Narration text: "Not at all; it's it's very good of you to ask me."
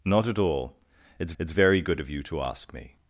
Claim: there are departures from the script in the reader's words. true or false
false